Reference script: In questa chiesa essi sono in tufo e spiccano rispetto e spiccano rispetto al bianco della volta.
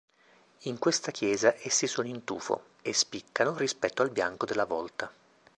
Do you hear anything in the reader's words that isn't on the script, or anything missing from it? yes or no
yes